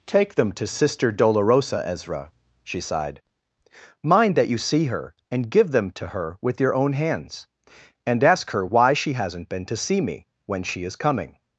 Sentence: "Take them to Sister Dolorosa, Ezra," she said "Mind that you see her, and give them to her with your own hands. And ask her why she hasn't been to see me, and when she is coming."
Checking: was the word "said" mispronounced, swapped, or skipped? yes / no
yes